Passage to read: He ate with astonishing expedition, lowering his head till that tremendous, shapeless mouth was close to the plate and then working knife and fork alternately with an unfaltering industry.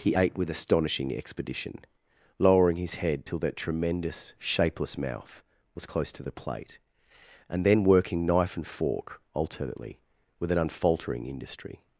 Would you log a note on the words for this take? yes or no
no